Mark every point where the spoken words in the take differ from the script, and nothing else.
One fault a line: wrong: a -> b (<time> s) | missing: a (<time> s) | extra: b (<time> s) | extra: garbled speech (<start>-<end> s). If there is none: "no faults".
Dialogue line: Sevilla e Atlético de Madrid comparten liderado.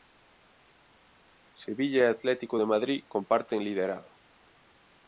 no faults